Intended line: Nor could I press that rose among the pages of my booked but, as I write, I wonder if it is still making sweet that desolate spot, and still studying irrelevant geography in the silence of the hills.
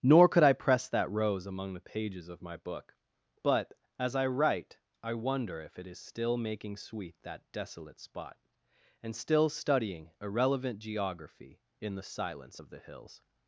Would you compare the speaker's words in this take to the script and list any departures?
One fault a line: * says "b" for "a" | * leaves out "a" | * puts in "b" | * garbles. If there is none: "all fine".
* says "book" for "booked"